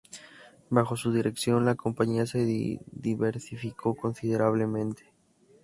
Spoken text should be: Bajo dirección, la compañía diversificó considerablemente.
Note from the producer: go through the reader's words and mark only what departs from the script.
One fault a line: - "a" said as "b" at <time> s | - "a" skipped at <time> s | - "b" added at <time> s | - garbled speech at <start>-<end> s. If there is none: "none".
- "su" added at 1.0 s
- "se" added at 2.2 s